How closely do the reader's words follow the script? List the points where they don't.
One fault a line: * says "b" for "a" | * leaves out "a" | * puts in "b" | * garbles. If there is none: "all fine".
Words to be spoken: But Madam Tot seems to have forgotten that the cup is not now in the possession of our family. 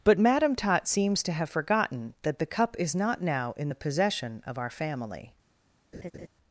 all fine